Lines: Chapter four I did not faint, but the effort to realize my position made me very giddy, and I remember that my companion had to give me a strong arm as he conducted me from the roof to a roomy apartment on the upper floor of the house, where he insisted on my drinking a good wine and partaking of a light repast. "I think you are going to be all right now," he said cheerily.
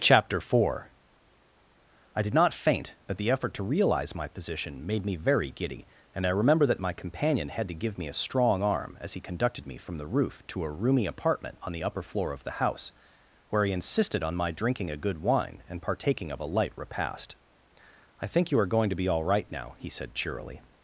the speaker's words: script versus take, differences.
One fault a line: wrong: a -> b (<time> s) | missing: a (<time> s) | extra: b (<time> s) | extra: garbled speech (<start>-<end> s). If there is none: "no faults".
no faults